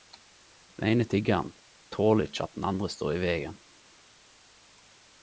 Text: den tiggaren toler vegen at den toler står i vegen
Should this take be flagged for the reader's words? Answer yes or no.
yes